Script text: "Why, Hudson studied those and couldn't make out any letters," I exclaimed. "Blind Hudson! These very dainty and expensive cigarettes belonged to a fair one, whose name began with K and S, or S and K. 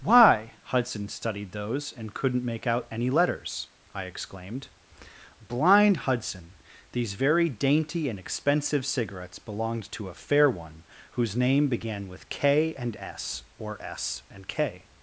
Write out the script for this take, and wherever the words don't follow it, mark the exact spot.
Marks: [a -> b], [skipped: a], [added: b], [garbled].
"Why, Hudson studied those and couldn't make out any letters," I exclaimed. "Blind Hudson! These very dainty and expensive cigarettes belonged to a fair one, whose name began with K and S, or S and K.